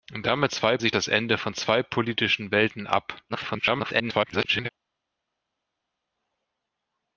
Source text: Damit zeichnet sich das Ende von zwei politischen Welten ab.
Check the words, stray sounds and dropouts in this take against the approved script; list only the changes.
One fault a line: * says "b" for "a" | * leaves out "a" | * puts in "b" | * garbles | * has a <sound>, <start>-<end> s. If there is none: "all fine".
* says "zwei" for "zeichnet"
* garbles